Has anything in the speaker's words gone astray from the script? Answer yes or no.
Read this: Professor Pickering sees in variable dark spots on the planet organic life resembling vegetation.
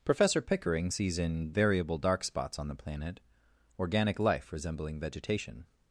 no